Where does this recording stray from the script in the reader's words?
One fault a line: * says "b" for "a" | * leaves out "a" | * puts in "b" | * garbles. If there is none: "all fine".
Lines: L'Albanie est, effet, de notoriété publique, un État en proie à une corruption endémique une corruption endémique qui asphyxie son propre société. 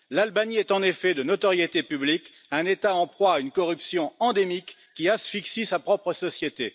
* puts in "en"
* leaves out "une corruption endémique"
* says "sa" for "son"